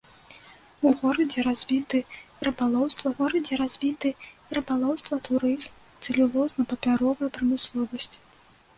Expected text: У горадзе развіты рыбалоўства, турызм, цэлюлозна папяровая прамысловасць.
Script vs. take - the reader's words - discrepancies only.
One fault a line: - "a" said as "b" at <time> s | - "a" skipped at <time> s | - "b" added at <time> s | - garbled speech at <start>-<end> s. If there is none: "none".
- "горадзе развіты рыбалоўства" added at 3.2 s